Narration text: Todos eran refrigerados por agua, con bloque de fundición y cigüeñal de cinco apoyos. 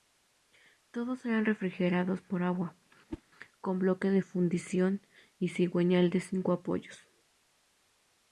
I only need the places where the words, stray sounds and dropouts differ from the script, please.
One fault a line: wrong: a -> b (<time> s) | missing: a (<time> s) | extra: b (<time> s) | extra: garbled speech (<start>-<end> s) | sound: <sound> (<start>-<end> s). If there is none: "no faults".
sound: whoosh (3.1-3.2 s)